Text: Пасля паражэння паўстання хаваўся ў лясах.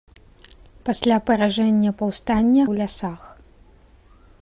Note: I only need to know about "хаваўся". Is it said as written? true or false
false